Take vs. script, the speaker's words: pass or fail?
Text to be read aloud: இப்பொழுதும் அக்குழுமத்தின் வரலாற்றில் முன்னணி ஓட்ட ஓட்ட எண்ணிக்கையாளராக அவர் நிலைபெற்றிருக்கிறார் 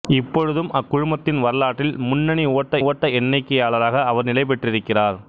pass